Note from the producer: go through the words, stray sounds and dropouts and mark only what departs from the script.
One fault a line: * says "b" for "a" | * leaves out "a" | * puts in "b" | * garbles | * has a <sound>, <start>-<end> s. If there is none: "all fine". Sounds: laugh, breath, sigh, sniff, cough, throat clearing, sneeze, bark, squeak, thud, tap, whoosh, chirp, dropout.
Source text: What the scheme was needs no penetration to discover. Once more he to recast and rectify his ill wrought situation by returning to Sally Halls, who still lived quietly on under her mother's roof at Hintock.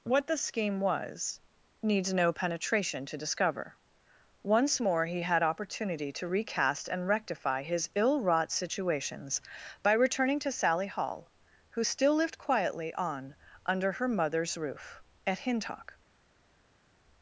* puts in "had opportunity"
* says "situations" for "situation"
* says "Hall" for "Halls"